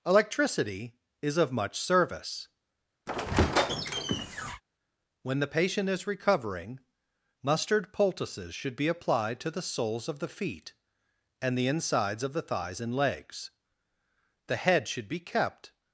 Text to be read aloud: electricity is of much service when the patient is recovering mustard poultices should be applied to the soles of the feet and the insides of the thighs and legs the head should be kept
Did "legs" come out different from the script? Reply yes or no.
no